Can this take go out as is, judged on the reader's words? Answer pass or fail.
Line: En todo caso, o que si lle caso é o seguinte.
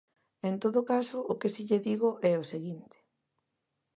fail